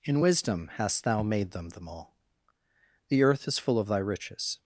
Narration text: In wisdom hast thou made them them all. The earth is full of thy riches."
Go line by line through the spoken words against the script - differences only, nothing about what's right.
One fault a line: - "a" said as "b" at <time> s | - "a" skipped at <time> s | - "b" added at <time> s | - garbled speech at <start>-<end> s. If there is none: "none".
none